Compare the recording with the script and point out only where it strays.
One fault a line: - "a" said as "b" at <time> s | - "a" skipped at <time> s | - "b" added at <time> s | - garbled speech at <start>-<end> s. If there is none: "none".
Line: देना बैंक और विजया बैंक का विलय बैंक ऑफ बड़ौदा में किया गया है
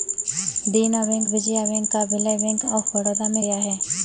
- "और" skipped at 1.3 s
- "किया" skipped at 3.4 s